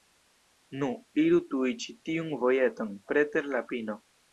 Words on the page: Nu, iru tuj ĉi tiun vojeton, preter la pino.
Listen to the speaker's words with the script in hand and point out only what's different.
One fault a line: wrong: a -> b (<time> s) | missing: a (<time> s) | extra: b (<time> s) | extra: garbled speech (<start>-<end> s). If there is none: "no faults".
no faults